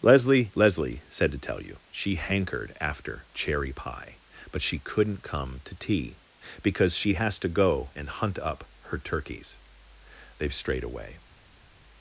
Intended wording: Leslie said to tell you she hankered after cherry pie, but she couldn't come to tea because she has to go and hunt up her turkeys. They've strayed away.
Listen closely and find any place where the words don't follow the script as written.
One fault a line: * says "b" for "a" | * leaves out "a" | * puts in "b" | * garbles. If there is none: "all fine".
* puts in "leslie"